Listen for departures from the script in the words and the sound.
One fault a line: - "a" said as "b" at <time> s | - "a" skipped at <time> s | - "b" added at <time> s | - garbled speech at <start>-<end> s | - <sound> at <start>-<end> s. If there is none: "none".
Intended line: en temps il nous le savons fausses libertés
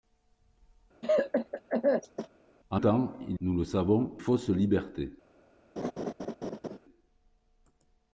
- cough at 1.0-2.3 s
- laugh at 5.8-6.8 s